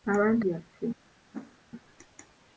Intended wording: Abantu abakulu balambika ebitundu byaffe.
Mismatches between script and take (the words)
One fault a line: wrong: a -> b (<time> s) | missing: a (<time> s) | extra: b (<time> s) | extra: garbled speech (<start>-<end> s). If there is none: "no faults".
missing: abakulu balambika ebitundu (0.4 s)